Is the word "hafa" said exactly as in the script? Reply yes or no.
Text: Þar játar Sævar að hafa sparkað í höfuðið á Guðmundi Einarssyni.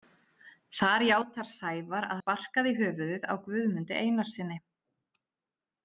no